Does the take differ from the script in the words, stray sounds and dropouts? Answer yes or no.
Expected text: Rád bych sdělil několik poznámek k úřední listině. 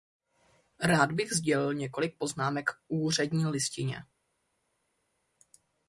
no